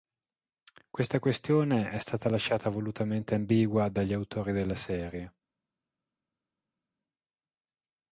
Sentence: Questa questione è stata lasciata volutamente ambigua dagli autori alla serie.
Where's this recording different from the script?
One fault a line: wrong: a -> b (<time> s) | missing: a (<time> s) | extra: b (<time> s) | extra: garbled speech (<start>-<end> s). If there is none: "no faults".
wrong: alla -> della (4.5 s)